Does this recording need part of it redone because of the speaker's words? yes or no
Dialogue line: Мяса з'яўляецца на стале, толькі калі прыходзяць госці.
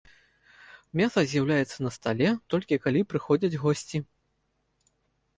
no